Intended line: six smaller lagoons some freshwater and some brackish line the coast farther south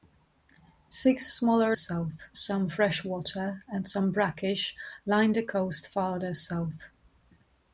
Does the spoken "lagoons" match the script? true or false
false